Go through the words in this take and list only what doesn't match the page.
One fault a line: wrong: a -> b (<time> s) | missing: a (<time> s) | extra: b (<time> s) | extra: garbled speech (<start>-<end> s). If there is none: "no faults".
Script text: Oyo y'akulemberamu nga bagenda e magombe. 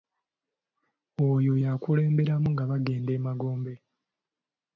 no faults